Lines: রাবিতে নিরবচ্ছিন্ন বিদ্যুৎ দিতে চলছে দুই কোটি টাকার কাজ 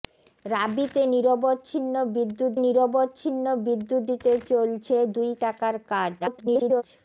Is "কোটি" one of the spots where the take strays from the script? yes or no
yes